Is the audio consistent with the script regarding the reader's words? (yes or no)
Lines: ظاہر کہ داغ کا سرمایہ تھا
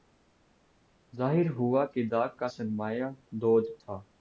no